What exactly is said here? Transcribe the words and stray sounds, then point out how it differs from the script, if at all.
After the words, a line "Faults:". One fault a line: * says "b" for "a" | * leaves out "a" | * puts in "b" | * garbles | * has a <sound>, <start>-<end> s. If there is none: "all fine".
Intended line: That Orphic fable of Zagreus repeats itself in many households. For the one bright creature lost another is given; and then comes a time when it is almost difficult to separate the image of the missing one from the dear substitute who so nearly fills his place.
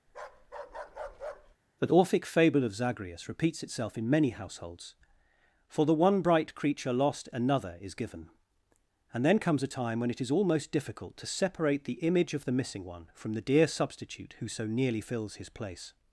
The Orphic fable of Zagreus repeats itself in many households. For the one bright creature lost another is given; and then comes a time when it is almost difficult to separate the image of the missing one from the dear substitute who so nearly fills his place.
Faults:
* has a bark, 0.1-1.6 s
* says "The" for "That"